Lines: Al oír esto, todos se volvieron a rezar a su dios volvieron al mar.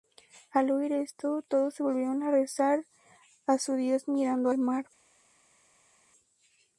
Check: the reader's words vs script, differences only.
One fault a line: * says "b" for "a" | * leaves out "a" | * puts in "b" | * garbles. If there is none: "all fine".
* says "mirando" for "volvieron"